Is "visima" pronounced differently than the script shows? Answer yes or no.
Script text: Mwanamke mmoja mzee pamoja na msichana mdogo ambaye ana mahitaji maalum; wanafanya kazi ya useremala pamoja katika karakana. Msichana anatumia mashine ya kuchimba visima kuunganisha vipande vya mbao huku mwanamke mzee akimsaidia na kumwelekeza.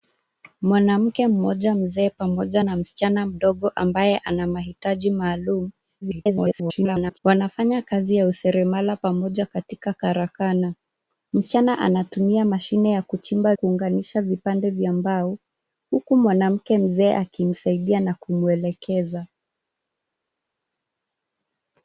yes